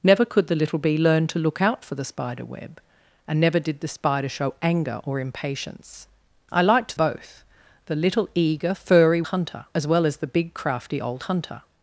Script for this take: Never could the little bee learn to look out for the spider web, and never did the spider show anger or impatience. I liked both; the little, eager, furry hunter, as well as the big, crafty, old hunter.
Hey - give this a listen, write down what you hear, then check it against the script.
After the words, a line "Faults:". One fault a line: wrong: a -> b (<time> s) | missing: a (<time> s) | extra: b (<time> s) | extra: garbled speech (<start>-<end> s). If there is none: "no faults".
Never could the little bee learn to look out for the spider web, and never did the spider show anger or impatience. I liked both; the little, eager, furry hunter, as well as the big, crafty, old hunter.
Faults:
no faults